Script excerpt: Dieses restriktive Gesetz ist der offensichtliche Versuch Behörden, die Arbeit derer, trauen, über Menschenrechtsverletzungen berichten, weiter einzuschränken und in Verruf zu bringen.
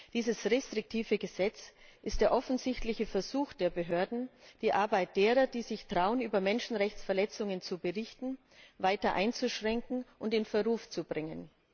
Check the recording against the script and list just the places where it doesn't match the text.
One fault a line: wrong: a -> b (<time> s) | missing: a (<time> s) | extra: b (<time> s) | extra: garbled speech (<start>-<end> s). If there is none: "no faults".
extra: der (3.5 s)
extra: die sich (5.5 s)
extra: zu (7.6 s)